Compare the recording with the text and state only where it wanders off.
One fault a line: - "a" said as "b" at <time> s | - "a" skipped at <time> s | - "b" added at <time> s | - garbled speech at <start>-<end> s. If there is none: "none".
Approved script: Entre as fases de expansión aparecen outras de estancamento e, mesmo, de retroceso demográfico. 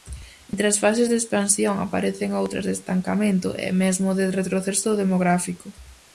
none